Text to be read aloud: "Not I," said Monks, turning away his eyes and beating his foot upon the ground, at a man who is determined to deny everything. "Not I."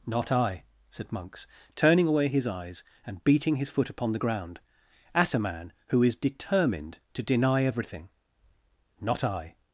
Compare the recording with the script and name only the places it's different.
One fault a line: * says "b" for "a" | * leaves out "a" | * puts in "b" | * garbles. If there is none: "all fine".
all fine